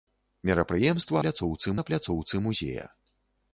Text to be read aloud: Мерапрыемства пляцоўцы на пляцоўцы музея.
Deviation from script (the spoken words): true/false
false